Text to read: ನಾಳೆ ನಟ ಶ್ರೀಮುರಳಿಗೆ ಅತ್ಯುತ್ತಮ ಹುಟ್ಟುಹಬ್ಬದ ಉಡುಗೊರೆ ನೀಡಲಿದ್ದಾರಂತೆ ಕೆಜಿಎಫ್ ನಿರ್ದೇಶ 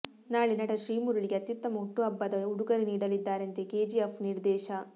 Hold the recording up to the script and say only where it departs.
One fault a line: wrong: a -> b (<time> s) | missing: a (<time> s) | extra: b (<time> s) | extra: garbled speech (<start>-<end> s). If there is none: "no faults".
no faults